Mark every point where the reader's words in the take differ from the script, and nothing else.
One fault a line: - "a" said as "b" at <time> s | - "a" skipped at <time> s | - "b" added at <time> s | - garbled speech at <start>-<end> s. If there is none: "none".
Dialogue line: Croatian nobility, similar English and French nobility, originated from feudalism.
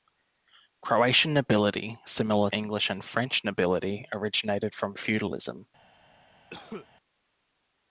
none